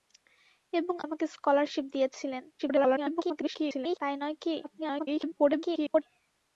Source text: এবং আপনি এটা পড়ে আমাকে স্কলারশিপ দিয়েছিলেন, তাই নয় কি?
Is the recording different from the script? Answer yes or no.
yes